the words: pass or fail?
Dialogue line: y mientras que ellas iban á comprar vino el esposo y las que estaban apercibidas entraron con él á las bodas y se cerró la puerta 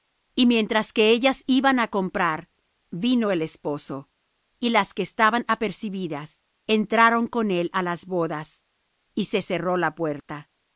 pass